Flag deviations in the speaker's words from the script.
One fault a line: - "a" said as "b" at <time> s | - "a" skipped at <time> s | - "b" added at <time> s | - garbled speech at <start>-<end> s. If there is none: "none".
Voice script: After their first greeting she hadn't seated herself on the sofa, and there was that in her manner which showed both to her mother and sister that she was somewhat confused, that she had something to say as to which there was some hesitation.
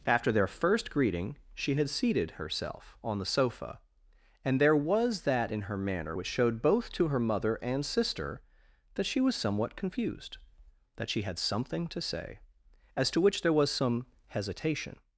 - "hadn't" said as "had" at 1.8 s